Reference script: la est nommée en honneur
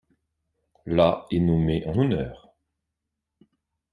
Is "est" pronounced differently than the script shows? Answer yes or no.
no